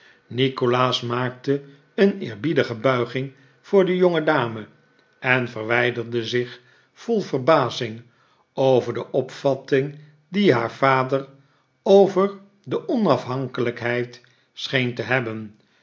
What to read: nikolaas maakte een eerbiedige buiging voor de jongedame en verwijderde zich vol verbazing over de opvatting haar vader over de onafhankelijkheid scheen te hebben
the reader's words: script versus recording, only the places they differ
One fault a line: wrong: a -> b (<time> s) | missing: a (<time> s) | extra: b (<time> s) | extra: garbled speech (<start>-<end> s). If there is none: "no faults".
extra: die (10.3 s)